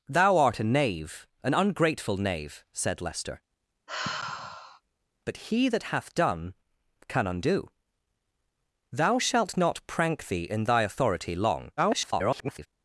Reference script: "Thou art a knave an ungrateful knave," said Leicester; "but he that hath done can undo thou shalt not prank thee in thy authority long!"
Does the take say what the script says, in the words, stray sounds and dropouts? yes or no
no